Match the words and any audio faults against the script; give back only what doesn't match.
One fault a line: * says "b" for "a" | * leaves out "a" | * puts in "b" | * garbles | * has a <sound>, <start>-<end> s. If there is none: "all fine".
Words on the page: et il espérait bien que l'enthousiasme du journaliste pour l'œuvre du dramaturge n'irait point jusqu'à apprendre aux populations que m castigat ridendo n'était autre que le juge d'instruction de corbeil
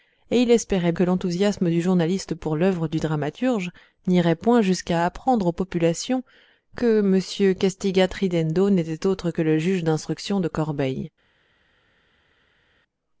* leaves out "bien"